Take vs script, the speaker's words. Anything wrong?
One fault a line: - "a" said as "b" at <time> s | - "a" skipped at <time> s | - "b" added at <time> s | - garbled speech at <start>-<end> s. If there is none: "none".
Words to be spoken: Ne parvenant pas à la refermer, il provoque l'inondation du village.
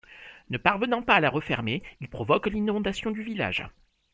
none